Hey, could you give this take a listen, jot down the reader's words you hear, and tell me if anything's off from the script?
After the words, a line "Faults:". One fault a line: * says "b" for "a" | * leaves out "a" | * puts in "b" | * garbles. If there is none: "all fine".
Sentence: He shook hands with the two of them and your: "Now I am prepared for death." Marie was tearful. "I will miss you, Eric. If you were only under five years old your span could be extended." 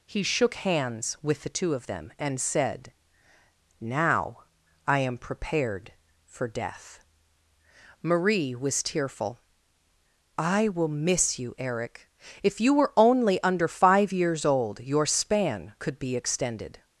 He shook hands with the two of them and said: "Now I am prepared for death." Marie was tearful. "I will miss you, Eric. If you were only under five years old your span could be extended."
Faults:
* says "said" for "your"